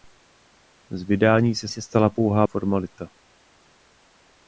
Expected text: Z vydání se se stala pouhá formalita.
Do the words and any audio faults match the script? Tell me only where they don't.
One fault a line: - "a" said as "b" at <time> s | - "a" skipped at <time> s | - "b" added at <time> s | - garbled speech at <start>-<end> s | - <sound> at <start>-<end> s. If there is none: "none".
none